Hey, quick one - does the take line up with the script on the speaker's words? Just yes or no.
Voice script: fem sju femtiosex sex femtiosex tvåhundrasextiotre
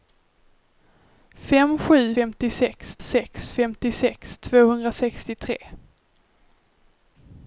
yes